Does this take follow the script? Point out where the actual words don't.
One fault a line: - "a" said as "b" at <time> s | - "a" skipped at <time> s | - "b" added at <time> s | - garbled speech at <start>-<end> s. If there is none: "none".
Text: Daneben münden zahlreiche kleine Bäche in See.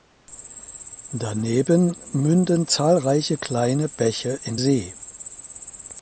none